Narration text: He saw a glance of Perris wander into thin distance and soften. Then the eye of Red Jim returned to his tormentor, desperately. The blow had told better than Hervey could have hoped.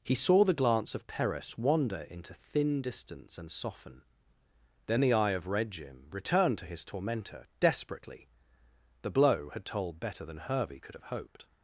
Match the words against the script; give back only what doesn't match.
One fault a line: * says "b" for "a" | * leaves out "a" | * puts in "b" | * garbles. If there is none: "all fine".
* says "the" for "a"